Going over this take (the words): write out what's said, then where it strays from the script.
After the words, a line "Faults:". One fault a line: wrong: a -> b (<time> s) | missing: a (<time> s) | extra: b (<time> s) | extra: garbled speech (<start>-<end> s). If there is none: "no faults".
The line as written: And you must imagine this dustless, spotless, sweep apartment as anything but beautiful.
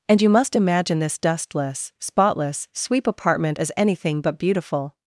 And you must imagine this dustless, spotless, sweep apartment as anything but beautiful.
Faults:
no faults